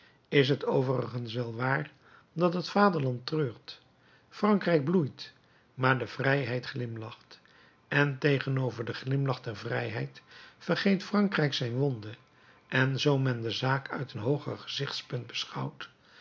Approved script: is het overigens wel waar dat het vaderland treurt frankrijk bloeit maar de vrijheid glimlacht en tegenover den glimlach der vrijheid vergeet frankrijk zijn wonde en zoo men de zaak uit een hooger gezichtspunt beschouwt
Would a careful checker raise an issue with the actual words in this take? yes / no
no